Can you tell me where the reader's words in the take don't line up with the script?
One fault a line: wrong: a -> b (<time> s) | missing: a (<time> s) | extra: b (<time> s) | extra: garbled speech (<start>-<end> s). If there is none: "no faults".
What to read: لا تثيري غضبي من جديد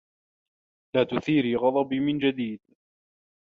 no faults